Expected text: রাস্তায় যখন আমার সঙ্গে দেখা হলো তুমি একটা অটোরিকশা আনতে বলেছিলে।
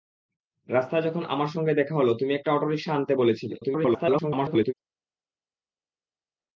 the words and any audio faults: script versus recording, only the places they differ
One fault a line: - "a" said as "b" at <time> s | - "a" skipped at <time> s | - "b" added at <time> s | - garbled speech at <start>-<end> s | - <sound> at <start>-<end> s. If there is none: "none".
- garbled speech at 3.6-4.7 s